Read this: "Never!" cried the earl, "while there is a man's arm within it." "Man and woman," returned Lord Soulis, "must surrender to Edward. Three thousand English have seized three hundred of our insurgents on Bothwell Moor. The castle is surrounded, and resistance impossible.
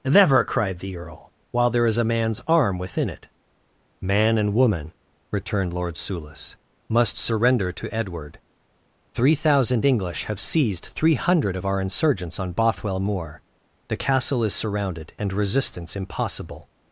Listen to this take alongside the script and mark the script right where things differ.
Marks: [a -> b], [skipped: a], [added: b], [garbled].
"Never!" cried the earl, "while there is a man's arm within it." "Man and woman," returned Lord Soulis, "must surrender to Edward. Three thousand English have seized three hundred of our insurgents on Bothwell Moor. The castle is surrounded, and resistance impossible.